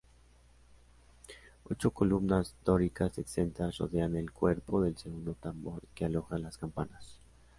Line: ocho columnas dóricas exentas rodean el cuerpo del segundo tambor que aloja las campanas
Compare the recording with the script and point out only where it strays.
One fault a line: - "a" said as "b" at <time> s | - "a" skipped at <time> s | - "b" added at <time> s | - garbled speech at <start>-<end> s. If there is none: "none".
none